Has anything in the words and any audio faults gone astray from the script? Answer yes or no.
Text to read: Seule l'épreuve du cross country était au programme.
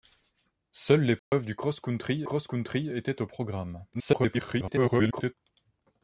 yes